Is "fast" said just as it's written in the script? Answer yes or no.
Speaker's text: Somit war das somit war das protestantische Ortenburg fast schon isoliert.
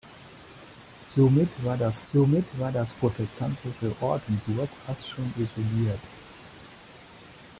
yes